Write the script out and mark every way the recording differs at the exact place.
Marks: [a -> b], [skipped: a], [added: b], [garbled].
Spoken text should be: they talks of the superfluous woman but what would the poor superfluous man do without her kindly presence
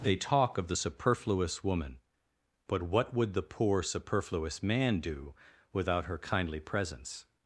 they [talks -> talk] of the superfluous woman but what would the poor superfluous man do without her kindly presence